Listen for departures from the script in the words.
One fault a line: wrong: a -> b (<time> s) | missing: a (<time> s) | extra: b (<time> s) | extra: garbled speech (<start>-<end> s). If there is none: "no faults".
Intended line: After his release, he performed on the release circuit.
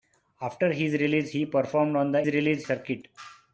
no faults